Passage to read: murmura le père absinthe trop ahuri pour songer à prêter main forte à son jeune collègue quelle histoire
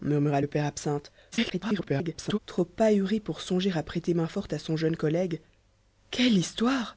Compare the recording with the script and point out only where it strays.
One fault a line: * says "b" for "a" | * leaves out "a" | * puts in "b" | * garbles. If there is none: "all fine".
* garbles